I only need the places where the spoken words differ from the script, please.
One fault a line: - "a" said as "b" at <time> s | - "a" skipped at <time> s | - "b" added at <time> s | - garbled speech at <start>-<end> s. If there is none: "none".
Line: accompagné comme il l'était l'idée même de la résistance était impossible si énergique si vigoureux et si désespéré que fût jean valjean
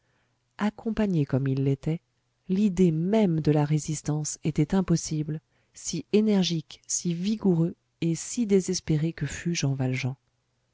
none